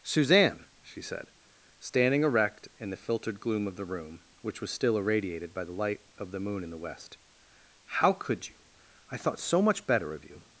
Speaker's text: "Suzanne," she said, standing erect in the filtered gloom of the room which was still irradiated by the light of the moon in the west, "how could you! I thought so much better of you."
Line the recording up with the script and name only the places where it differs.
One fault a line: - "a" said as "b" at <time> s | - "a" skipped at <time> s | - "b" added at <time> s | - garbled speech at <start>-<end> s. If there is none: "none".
none